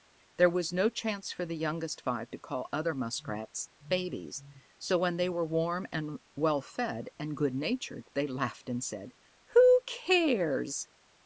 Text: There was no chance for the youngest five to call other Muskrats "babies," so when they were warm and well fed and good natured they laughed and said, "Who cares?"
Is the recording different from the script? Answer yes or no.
no